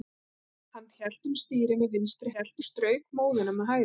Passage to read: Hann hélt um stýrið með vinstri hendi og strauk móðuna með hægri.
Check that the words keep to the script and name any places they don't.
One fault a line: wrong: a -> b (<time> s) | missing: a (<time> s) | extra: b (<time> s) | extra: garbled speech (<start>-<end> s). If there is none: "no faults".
wrong: hendi -> hélt (2.3 s)